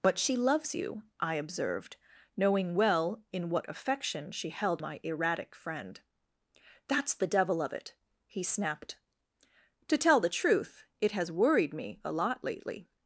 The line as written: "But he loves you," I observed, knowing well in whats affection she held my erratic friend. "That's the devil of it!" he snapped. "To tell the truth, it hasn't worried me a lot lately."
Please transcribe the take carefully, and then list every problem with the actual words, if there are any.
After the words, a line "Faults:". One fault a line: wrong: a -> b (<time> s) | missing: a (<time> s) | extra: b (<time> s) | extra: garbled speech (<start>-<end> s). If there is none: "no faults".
"But she loves you," I observed, knowing well in what affection she held my erratic friend. "That's the devil of it!" he snapped. "To tell the truth, it has worried me a lot lately."
Faults:
wrong: he -> she (0.2 s)
wrong: whats -> what (3.5 s)
wrong: hasn't -> has (11.1 s)